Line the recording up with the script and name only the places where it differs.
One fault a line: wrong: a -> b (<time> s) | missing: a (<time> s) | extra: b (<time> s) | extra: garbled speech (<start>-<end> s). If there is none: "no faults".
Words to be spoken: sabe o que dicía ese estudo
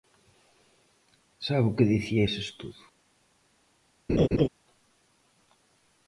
no faults